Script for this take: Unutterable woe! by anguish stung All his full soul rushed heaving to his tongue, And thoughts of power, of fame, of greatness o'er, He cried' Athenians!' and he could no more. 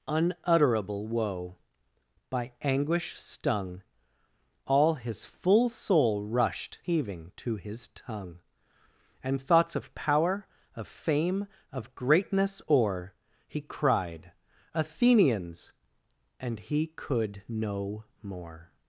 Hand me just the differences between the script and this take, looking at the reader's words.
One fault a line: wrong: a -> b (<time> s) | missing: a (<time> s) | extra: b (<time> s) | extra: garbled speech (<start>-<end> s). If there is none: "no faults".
no faults